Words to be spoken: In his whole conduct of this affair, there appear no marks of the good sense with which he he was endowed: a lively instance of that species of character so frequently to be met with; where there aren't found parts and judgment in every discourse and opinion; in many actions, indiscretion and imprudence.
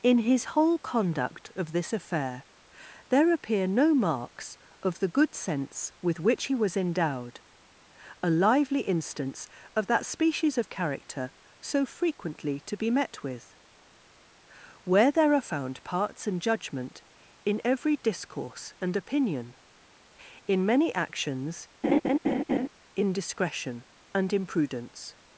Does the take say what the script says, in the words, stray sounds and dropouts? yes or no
no